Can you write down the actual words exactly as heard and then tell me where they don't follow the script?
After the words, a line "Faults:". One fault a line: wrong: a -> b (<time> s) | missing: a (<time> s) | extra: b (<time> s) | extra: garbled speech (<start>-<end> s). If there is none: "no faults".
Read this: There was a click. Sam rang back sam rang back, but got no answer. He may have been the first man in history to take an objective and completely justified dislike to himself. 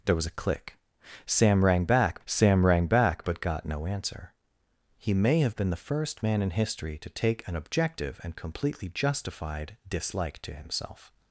There was a click. Sam rang back sam rang back, but got no answer. He may have been the first man in history to take an objective and completely justified dislike to himself.
Faults:
no faults